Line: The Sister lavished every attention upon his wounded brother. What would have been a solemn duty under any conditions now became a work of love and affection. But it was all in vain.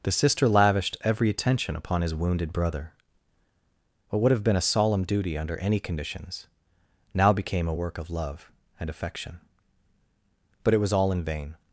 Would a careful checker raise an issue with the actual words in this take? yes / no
no